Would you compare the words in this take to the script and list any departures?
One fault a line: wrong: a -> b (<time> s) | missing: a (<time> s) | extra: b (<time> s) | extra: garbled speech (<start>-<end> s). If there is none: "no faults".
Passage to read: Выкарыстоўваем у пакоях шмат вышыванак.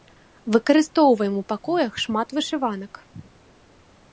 no faults